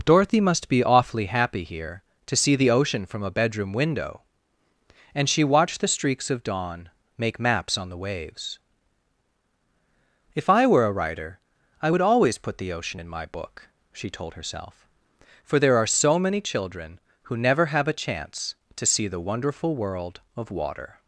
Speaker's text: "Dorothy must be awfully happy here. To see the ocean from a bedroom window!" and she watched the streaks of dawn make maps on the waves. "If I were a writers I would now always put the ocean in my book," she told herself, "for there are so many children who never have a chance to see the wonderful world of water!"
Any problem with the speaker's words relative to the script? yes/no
yes